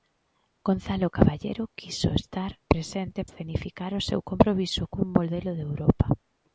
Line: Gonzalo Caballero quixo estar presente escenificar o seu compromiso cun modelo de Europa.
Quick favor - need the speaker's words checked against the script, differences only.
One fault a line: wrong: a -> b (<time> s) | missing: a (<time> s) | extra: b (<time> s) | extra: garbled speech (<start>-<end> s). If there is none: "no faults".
no faults